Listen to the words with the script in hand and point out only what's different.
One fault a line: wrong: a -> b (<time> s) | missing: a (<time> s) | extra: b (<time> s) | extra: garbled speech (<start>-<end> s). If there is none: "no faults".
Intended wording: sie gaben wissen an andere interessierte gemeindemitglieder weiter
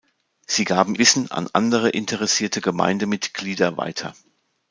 no faults